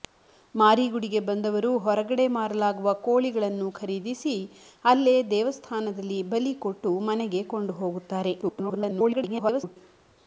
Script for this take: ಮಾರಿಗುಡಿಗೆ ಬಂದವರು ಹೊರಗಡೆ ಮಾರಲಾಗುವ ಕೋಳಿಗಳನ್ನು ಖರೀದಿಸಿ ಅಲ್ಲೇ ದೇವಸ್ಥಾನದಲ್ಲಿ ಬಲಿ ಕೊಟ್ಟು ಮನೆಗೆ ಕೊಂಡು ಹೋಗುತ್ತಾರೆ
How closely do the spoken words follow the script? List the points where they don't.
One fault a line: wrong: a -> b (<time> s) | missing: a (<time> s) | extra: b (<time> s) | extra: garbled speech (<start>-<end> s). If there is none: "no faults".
extra: garbled speech (8.4-9.8 s)